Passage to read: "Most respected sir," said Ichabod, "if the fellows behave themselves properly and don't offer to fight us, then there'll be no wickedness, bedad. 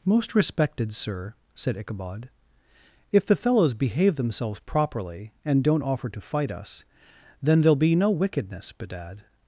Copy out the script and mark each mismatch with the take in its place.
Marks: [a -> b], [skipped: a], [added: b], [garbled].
"Most respected sir," said Ichabod, "if the fellows behave themselves properly and don't offer to fight us, then there'll be no wickedness, bedad.